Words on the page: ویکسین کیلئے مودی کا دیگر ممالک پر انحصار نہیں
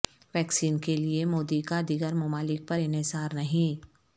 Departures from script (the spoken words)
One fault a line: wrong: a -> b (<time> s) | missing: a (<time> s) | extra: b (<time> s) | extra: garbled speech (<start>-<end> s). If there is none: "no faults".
no faults